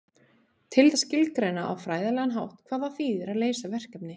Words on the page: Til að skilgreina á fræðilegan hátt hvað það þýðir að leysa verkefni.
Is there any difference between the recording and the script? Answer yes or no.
no